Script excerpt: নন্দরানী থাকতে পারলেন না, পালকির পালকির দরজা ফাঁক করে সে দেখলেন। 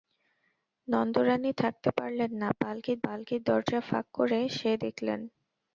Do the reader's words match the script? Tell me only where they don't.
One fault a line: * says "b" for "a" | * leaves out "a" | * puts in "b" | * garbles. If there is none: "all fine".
all fine